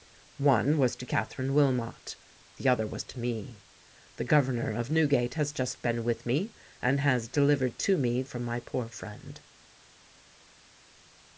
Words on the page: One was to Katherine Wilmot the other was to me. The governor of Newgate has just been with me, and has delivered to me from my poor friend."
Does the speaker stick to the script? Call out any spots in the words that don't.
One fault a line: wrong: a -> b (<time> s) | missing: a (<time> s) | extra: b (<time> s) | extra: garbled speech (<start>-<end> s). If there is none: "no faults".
no faults